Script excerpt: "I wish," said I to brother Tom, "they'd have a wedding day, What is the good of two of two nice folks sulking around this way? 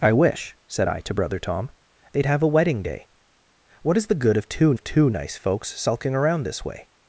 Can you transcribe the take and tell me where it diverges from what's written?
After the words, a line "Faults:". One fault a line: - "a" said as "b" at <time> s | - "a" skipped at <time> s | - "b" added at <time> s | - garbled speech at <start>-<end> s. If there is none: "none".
"I wish," said I to brother Tom, "they'd have a wedding day, What is the good of two of two nice folks sulking around this way?
Faults:
none